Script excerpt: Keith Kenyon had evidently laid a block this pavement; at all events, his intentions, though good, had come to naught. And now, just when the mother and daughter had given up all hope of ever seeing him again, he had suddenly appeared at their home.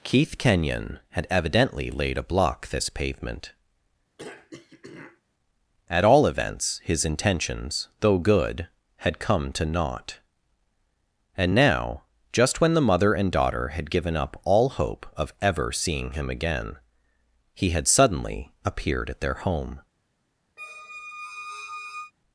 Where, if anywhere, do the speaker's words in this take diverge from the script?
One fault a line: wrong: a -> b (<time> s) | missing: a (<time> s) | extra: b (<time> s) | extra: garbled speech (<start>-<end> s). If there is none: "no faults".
no faults